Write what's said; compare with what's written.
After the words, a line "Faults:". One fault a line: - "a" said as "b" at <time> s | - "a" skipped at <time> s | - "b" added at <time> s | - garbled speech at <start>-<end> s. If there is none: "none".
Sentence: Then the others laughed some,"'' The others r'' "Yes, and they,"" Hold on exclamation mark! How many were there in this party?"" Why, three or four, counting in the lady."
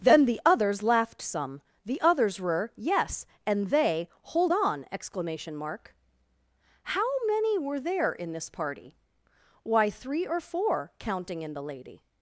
Then the others laughed some,"'' The others were'' "Yes, and they,"" Hold on exclamation mark! How many were there in this party?"" Why, three or four, counting in the lady."
Faults:
- "r" said as "were" at 2.4 s